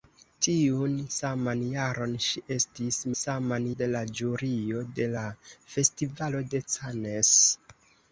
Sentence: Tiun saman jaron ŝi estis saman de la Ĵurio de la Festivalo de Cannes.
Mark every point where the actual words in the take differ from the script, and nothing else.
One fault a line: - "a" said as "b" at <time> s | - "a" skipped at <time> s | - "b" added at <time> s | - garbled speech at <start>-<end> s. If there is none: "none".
none